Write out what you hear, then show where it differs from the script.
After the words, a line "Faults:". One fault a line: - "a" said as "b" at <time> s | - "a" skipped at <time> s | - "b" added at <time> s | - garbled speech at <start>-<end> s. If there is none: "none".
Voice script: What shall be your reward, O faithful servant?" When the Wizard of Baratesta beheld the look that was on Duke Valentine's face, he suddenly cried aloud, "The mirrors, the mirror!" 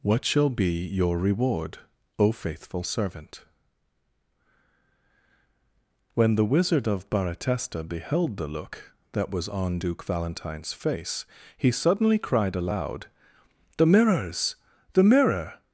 What shall be your reward, O faithful servant?" When the Wizard of Baratesta beheld the look that was on Duke Valentine's face, he suddenly cried aloud, "The mirrors, the mirror!"
Faults:
none